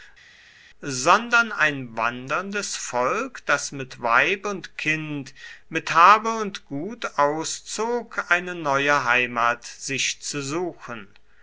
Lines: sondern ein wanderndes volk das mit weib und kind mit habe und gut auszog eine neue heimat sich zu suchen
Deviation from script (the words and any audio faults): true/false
false